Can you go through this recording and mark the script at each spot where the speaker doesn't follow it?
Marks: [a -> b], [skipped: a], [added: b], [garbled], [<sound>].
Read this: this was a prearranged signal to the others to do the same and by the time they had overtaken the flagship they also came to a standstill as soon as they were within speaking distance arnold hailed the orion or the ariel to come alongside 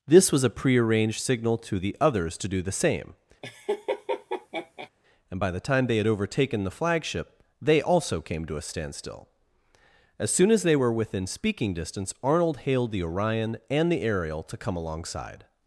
this was a prearranged signal to the others to do the same [laugh] and by the time they had overtaken the flagship they also came to a standstill as soon as they were within speaking distance arnold hailed the orion [or -> and] the ariel to come alongside